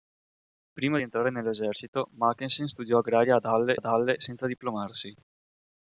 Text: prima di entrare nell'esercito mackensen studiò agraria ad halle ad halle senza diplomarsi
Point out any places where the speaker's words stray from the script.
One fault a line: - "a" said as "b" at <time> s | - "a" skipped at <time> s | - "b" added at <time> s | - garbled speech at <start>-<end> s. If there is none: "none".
none